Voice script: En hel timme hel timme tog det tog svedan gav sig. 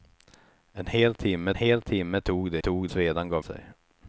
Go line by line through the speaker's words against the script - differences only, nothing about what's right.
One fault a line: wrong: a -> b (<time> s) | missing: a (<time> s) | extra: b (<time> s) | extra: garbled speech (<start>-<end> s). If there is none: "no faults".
no faults